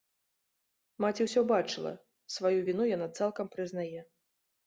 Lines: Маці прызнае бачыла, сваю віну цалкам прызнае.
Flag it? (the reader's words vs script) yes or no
yes